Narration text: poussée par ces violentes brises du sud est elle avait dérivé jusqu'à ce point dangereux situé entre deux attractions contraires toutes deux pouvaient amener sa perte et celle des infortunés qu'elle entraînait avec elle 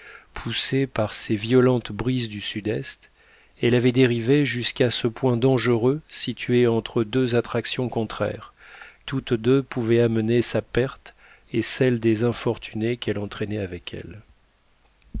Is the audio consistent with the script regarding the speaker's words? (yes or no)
yes